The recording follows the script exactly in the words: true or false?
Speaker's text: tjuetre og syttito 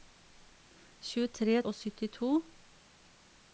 true